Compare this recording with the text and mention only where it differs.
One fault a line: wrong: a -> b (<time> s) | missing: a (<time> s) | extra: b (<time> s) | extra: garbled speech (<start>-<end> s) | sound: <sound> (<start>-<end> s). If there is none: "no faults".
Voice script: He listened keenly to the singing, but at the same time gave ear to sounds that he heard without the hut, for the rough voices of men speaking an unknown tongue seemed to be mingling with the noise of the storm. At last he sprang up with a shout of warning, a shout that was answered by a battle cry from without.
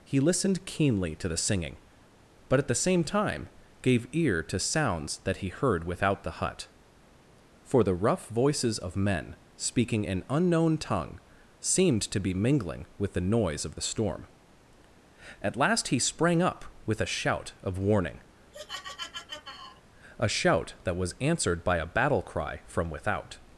sound: laugh (18.5-19.8 s)